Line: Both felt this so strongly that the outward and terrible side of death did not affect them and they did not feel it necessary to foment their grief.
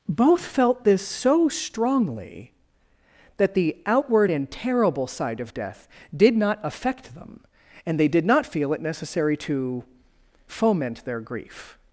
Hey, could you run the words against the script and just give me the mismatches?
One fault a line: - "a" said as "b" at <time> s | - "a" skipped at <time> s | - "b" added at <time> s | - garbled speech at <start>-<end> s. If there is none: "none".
none